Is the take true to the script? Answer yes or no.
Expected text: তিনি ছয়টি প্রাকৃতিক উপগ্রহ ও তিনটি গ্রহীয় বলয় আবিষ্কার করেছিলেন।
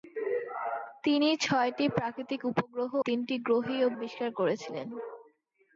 no